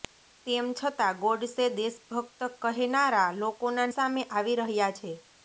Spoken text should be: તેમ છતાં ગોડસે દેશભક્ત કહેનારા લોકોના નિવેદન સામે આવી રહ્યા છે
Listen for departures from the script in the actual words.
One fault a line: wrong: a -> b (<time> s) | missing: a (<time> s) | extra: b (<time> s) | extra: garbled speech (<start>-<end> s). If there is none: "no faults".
missing: નિવેદન (3.9 s)